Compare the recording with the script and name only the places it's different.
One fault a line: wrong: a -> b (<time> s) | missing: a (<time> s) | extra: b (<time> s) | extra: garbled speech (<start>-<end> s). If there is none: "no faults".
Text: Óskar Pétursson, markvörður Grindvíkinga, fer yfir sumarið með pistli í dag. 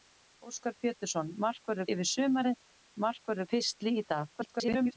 missing: Grindvíkinga fer (1.9 s)
wrong: með -> markvörður (3.1 s)
extra: garbled speech (4.3-5.0 s)